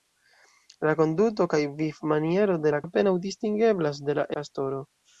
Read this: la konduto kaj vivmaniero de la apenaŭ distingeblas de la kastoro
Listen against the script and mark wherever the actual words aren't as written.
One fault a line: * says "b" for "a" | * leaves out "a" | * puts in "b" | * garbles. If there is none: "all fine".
all fine